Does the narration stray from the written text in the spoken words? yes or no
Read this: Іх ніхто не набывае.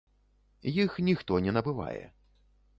no